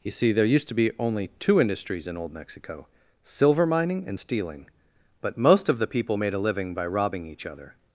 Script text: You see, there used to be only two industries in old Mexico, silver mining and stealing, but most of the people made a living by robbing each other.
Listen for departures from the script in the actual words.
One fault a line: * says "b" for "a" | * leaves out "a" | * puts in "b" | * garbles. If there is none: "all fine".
all fine